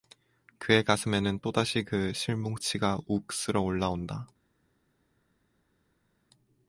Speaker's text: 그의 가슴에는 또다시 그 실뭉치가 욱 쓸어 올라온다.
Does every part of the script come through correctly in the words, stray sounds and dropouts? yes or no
yes